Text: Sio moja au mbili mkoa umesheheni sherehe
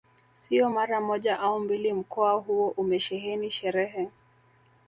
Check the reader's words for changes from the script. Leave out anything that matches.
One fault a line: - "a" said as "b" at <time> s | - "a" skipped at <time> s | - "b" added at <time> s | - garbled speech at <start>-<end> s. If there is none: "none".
- "mara" added at 0.7 s
- "huo" added at 2.3 s